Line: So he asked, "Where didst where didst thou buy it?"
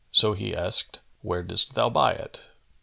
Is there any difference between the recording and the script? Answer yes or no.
yes